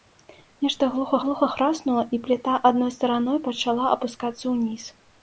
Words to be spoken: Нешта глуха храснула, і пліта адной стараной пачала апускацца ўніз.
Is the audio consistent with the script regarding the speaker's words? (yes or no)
no